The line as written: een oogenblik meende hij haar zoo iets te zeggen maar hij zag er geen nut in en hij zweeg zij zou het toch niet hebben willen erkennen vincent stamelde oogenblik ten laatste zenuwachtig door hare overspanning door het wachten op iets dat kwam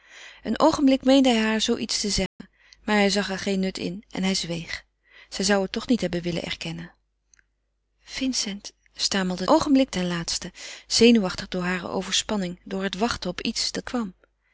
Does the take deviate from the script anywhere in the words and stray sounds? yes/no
yes